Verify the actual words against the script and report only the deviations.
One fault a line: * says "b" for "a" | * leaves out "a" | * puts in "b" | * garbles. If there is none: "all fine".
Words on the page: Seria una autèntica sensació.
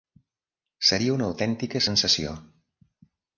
all fine